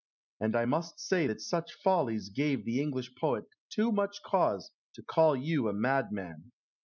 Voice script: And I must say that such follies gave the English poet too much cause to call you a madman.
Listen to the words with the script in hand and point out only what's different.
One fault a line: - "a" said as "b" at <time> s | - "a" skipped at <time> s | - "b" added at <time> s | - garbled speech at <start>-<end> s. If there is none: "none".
none